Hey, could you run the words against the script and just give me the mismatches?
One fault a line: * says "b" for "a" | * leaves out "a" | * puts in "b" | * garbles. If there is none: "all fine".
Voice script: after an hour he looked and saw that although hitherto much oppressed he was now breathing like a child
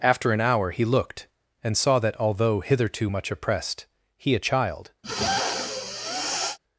* leaves out "was now breathing like"